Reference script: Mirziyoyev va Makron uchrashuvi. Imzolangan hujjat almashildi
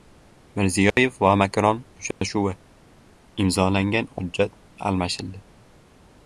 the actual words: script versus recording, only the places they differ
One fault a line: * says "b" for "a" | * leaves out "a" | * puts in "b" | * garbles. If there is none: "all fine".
all fine